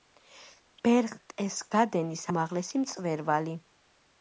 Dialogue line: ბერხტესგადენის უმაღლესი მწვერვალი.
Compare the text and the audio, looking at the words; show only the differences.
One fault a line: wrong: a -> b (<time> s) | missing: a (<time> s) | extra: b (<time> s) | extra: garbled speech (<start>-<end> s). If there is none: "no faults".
no faults